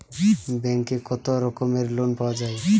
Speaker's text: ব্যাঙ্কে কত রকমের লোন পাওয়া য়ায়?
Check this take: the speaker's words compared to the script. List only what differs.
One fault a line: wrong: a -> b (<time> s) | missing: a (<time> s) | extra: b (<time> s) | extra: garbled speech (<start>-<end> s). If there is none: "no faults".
no faults